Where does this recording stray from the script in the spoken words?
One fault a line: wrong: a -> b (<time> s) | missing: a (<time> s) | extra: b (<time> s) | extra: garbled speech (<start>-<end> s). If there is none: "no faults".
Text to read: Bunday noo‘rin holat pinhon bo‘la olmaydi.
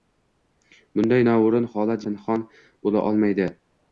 no faults